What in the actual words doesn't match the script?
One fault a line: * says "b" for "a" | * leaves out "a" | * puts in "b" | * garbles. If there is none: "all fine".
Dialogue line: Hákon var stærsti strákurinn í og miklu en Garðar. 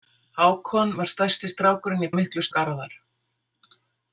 all fine